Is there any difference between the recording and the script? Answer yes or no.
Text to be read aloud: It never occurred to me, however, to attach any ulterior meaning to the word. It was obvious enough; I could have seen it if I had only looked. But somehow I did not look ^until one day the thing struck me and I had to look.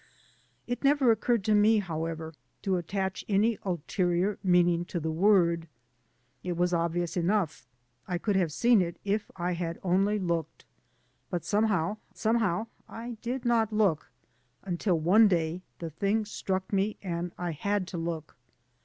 yes